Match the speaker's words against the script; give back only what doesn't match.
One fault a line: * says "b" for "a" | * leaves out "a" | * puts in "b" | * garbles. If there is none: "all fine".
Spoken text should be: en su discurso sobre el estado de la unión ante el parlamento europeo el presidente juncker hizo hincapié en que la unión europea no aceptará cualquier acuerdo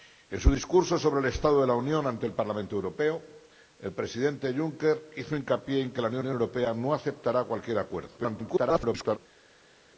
* puts in "unión"
* garbles